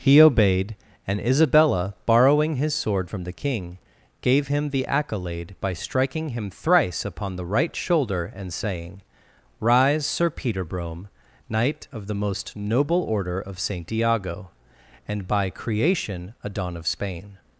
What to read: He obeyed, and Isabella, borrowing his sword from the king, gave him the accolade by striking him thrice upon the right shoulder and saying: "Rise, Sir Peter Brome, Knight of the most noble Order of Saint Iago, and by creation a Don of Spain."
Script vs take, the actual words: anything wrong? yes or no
no